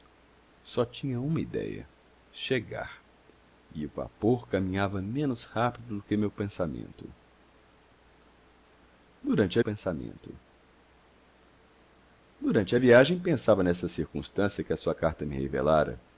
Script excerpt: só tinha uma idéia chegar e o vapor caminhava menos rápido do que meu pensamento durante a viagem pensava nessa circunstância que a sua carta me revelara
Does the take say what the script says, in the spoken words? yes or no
no